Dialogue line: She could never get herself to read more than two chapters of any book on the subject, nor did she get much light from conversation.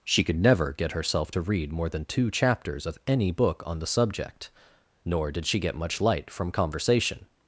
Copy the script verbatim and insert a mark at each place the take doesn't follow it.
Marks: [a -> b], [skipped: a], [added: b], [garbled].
She could never get herself to read more than two chapters of any book on the subject, nor did she get much light from conversation.